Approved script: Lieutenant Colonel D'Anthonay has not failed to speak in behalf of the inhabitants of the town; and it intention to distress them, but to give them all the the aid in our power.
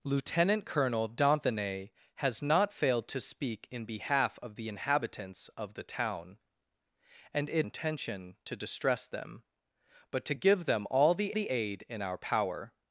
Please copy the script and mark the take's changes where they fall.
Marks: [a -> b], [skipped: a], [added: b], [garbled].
Lieutenant Colonel D'Anthonay has not failed to speak in behalf of the inhabitants of the town; and it intention to distress them, but to give them all the the aid in our power.